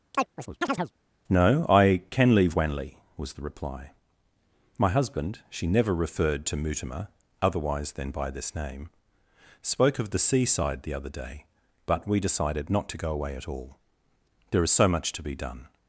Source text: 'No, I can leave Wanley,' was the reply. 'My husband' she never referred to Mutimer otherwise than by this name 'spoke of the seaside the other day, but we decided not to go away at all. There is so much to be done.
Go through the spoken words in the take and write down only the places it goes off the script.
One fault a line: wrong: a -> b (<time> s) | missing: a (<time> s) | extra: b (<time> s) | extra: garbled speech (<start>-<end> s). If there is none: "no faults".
no faults